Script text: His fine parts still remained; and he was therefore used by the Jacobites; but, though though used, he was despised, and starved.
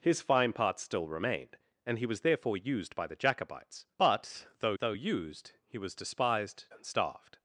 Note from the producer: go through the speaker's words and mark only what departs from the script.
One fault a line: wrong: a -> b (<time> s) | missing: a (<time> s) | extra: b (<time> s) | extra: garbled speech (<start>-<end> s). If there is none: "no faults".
no faults